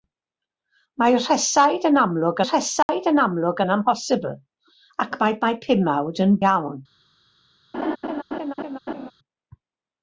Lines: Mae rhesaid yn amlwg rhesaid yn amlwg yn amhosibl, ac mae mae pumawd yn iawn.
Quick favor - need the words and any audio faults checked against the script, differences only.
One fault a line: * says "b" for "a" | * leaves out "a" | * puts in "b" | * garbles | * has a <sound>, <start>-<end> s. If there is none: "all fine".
* has a dropout, 2.8-2.9 s
* has a laugh, 7.7-9.1 s